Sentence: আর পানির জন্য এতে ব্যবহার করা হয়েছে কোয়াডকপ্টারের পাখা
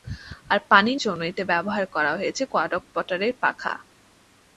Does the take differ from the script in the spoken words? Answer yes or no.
no